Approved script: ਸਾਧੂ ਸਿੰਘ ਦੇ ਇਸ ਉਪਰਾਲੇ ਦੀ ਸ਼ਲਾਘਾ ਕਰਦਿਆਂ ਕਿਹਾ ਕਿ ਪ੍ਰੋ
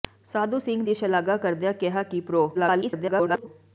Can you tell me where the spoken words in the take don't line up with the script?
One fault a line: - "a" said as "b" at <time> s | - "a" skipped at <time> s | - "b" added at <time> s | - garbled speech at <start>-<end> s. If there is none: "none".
- "ਦੇ ਇਸ ਉਪਰਾਲੇ" skipped at 0.8 s
- garbled speech at 2.5-3.5 s